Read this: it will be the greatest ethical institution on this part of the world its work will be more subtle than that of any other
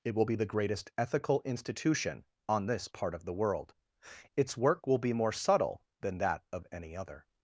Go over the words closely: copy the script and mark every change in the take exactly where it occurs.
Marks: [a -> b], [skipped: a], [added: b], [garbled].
it will be the greatest ethical institution on this part of the world its work will be more subtle than that of any other